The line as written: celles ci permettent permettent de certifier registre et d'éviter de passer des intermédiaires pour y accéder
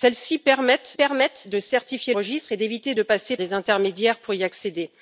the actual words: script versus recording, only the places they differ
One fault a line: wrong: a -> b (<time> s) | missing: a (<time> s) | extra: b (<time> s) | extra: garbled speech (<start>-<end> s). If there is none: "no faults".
no faults